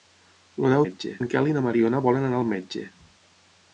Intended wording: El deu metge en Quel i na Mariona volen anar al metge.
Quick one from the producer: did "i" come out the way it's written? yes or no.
yes